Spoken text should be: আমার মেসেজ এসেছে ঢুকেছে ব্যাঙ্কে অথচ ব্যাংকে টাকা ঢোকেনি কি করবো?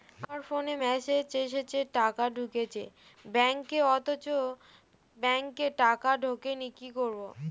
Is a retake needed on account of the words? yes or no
yes